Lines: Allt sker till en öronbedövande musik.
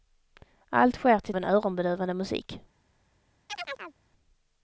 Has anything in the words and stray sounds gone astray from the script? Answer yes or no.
yes